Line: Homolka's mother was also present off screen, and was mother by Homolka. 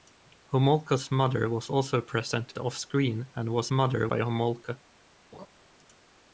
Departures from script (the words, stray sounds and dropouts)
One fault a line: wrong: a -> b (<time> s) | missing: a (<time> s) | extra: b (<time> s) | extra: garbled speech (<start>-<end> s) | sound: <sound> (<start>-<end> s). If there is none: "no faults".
sound: laugh (5.3-5.5 s)